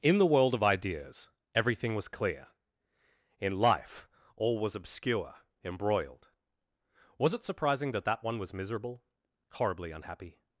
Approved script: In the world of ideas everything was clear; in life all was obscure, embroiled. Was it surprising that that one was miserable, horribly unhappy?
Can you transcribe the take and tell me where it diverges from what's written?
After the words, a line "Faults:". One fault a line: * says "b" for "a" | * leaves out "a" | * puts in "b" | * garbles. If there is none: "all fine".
In the world of ideas everything was clear; in life all was obscure, embroiled. Was it surprising that that one was miserable, horribly unhappy?
Faults:
all fine